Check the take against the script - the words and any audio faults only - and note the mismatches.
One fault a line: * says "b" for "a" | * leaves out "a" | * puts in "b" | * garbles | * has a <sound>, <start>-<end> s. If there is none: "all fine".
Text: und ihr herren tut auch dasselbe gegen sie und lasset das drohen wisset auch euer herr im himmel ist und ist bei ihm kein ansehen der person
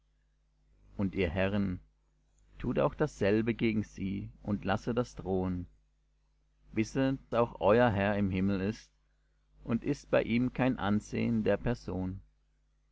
all fine